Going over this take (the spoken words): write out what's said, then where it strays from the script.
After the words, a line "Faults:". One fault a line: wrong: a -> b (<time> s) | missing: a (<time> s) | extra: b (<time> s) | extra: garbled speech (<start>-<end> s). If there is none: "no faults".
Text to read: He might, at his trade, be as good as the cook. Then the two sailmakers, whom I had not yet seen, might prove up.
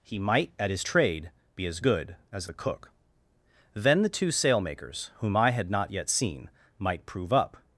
He might, at his trade, be as good as the cook. Then the two sailmakers, whom I had not yet seen, might prove up.
Faults:
no faults